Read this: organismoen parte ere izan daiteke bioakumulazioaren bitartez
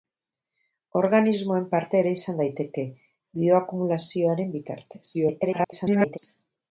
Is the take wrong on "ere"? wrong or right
right